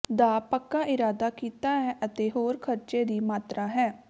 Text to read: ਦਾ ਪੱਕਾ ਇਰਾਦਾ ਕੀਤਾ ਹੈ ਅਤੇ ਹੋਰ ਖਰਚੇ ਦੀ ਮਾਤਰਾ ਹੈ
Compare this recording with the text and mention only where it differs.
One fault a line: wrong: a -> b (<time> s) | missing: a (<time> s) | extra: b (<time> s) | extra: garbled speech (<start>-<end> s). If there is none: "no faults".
no faults